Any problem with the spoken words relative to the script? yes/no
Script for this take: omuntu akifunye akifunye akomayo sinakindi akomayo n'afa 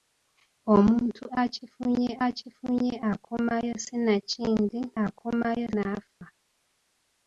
no